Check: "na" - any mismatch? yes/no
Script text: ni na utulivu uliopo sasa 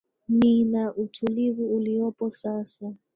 no